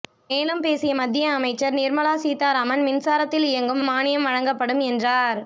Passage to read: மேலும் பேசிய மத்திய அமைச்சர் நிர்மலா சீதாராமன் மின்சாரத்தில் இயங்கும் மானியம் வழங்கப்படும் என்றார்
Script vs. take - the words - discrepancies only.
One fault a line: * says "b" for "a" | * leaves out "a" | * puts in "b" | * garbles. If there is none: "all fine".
all fine